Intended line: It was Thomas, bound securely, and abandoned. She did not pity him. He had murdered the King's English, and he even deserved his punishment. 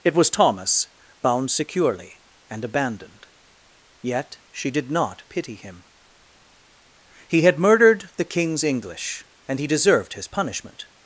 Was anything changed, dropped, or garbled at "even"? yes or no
yes